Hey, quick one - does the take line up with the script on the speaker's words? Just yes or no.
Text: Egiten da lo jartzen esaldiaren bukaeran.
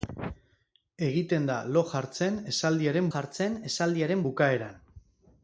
no